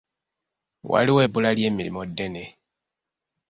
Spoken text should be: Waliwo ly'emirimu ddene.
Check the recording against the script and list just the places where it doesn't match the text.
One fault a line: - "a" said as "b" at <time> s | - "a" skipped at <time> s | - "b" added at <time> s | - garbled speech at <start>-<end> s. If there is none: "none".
- "ebbula" added at 1.2 s